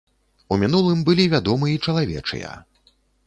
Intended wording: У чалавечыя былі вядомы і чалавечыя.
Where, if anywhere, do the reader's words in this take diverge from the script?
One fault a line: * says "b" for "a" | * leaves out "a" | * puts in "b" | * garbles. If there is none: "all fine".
* says "мінулым" for "чалавечыя"